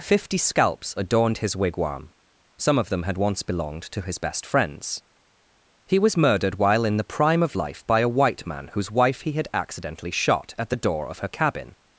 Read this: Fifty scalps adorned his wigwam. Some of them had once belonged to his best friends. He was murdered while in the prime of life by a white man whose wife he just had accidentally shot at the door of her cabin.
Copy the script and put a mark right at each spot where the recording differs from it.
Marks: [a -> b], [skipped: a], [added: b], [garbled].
Fifty scalps adorned his wigwam. Some of them had once belonged to his best friends. He was murdered while in the prime of life by a white man whose wife he [skipped: just] had accidentally shot at the door of her cabin.